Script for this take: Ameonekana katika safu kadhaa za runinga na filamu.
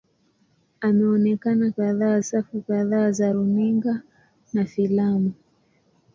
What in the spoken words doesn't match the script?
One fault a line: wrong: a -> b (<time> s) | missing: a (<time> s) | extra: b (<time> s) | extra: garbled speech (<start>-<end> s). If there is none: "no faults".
wrong: katika -> kadhaa (1.7 s)